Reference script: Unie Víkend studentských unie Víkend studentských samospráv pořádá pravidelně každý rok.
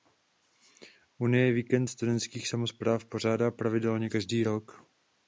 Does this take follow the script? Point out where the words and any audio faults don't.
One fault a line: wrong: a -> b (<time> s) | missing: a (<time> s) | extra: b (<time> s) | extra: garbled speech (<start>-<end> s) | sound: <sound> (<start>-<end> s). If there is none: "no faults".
missing: unie Víkend studentských (2.5 s)